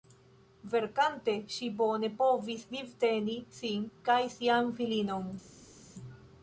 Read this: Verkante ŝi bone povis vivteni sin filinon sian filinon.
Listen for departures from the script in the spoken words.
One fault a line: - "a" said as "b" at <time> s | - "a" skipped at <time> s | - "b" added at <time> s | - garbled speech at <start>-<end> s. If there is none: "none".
- "filinon" said as "kaj" at 4.1 s